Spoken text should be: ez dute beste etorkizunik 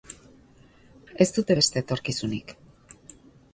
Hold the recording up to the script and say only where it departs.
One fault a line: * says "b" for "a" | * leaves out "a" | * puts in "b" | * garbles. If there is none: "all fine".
all fine